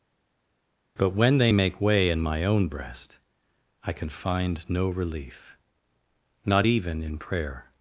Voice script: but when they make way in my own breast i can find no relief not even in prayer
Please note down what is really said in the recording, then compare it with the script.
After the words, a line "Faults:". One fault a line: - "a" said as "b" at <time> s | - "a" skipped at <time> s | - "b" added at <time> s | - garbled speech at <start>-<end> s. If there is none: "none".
but when they make way in my own breast i can find no relief not even in prayer
Faults:
none